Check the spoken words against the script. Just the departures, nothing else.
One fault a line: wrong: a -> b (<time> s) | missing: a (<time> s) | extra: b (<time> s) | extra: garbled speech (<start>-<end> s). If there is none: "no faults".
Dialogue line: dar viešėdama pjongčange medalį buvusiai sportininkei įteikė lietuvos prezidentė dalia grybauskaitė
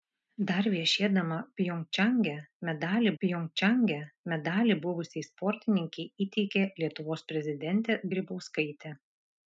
extra: pjongčange medalį (3.2 s)
missing: dalia (8.0 s)